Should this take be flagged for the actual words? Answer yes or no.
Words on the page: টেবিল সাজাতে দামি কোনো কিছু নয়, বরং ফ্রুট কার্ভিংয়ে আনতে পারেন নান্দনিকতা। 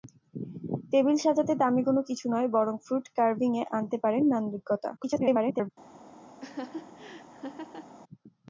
yes